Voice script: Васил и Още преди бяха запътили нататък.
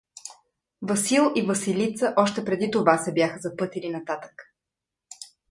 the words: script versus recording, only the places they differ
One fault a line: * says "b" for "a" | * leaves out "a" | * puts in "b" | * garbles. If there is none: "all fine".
* puts in "Василица"
* puts in "това се"